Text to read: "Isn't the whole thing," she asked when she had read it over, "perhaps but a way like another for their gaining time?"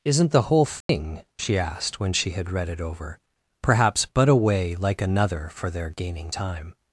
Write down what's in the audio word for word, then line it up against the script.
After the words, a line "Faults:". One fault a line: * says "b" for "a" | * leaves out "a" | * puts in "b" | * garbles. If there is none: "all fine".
"Isn't the whole thing," she asked when she had read it over, "perhaps but a way like another for their gaining time?"
Faults:
all fine